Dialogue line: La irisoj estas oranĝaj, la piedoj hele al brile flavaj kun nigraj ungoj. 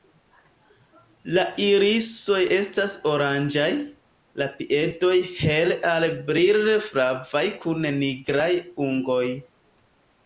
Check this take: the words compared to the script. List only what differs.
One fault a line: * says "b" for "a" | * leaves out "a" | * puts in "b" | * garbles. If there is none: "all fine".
all fine